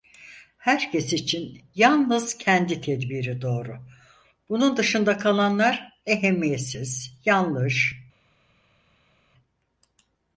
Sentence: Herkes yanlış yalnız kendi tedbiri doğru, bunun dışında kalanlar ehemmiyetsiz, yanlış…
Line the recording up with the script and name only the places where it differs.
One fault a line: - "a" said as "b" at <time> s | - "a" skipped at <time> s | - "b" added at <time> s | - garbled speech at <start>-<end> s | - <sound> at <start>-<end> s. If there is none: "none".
- "yanlış" said as "için" at 1.1 s